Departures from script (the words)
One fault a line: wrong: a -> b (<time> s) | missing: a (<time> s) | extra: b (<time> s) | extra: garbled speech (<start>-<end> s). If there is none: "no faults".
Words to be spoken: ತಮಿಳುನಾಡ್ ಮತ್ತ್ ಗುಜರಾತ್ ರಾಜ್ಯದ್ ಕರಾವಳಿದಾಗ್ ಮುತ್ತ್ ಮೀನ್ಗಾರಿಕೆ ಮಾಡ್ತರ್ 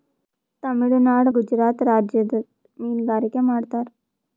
missing: ಮತ್ತ್ (1.3 s)
missing: ಕರಾವಳಿದಾಗ್ ಮುತ್ತ್ (2.4 s)